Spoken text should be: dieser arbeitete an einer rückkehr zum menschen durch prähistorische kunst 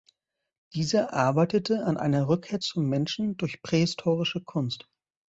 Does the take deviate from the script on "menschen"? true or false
false